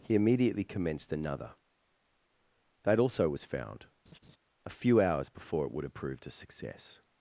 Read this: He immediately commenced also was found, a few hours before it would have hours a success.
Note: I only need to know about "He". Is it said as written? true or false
true